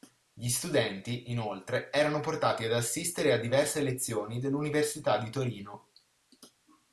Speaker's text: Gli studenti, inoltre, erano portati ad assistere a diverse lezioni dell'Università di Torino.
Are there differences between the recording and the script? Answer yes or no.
no